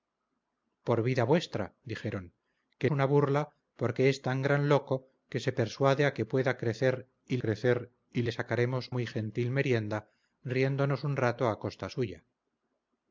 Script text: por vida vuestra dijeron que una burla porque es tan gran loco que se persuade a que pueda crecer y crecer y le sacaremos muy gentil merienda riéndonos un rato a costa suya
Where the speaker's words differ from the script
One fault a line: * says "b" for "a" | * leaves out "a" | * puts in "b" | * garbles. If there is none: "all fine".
all fine